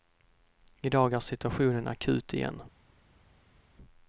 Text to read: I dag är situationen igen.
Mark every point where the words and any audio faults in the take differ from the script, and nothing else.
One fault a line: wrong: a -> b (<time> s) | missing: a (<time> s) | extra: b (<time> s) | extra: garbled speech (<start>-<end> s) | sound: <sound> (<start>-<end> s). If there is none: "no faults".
extra: akut (1.9 s)